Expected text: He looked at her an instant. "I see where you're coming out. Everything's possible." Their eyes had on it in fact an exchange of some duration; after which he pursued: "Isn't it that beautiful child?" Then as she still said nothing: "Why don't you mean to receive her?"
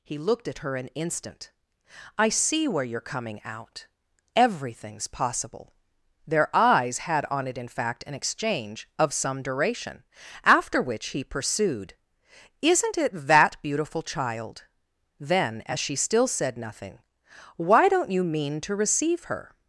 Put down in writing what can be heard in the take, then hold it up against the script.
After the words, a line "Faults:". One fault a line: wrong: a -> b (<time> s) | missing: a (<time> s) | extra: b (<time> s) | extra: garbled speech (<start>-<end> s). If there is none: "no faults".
He looked at her an instant. "I see where you're coming out. Everything's possible." Their eyes had on it in fact an exchange of some duration; after which he pursued: "Isn't it that beautiful child?" Then as she still said nothing: "Why don't you mean to receive her?"
Faults:
no faults